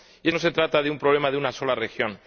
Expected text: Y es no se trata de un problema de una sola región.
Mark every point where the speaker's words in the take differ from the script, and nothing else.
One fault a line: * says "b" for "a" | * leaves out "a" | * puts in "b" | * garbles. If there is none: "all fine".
all fine